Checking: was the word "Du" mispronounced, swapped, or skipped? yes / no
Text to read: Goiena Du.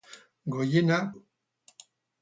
no